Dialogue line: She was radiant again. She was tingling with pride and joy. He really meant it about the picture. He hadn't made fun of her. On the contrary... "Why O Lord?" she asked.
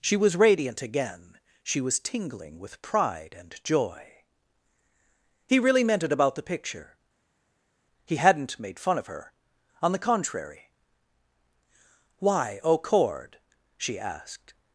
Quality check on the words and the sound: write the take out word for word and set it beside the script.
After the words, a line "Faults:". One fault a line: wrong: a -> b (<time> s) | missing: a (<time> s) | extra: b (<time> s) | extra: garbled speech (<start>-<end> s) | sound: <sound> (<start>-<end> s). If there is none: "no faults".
She was radiant again. She was tingling with pride and joy. He really meant it about the picture. He hadn't made fun of her. On the contrary... "Why O Cord?" she asked.
Faults:
wrong: Lord -> Cord (12.8 s)